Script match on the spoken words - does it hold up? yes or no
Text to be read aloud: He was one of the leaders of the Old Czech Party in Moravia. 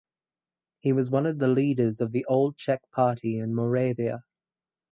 yes